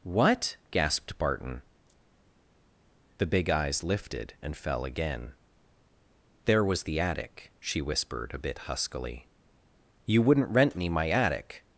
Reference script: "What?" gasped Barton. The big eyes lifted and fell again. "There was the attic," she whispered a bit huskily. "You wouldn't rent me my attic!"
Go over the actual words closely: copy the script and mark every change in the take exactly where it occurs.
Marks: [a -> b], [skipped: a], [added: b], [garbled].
"What?" gasped Barton. The big eyes lifted and fell again. "There was the attic," she whispered a bit huskily. "You wouldn't rent me my attic!"